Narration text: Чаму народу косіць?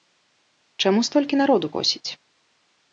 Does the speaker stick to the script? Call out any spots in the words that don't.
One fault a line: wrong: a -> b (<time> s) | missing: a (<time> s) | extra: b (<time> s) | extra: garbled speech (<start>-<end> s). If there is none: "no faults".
extra: столькі (1.1 s)